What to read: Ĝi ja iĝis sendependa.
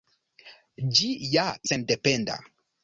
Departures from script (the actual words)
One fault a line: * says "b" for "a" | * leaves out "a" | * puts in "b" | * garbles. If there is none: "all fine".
* leaves out "iĝis"